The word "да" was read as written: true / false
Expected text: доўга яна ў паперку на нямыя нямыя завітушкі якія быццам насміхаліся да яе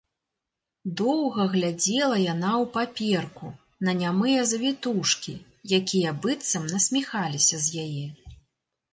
false